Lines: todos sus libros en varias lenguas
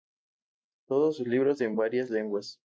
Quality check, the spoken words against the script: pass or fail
pass